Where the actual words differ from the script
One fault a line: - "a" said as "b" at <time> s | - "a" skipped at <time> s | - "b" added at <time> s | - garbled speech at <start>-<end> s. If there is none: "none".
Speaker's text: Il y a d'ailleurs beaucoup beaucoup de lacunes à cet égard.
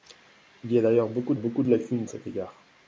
none